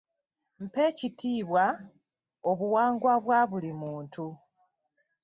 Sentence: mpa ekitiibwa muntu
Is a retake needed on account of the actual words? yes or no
yes